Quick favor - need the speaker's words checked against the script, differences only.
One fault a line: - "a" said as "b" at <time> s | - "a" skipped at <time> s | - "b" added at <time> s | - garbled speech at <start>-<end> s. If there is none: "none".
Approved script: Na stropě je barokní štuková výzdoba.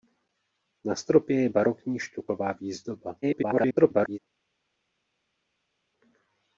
- garbled speech at 3.2-4.2 s